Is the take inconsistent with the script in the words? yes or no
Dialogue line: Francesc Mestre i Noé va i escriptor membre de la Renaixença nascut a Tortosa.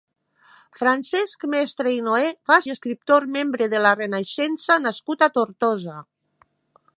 no